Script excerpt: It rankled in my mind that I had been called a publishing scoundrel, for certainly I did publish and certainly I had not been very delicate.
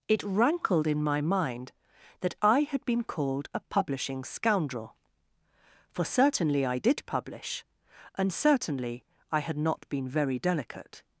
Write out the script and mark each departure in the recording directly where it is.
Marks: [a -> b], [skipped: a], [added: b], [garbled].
It rankled in my mind that I had been called a publishing scoundrel, for certainly I did publish and certainly I had not been very delicate.